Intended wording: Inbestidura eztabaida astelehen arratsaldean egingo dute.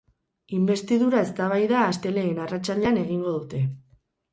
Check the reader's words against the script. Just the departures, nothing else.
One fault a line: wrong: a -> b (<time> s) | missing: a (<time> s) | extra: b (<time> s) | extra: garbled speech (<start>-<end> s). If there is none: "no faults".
no faults